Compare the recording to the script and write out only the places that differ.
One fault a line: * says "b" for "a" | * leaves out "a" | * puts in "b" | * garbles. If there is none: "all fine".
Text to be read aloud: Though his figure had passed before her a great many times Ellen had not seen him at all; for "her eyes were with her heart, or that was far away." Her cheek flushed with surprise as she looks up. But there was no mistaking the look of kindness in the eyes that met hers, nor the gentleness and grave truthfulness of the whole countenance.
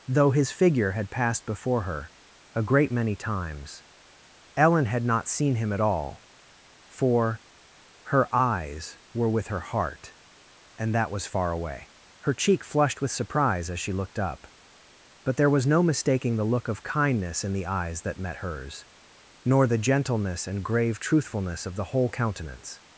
* says "and" for "or"
* says "looked" for "looks"